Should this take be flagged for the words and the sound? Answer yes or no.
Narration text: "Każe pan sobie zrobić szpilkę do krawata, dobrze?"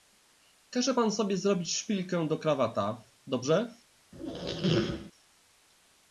yes